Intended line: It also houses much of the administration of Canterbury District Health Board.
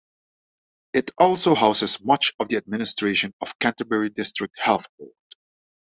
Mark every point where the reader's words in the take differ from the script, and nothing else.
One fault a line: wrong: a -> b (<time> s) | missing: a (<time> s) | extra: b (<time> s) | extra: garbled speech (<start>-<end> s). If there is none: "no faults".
no faults